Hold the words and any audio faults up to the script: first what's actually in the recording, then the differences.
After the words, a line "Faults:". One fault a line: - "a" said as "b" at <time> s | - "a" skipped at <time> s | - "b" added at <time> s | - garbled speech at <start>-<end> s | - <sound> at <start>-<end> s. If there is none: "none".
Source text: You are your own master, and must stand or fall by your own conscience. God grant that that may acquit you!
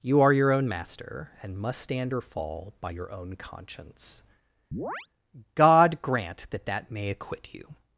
You are your own master, and must stand or fall by your own conscience. God grant that that may acquit you!
Faults:
- chirp at 4.7-5.1 s